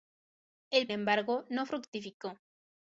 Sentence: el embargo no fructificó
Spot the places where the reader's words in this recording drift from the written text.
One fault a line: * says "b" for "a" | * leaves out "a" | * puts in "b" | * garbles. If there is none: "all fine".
all fine